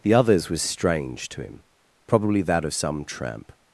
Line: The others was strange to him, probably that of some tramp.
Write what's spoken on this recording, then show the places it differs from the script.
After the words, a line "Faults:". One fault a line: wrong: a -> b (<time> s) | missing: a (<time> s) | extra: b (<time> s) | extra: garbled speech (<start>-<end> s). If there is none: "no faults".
The others was strange to him, probably that of some tramp.
Faults:
no faults